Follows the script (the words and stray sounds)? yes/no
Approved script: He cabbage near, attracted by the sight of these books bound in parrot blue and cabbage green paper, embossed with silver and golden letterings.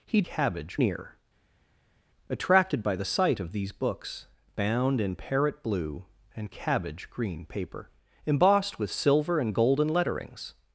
yes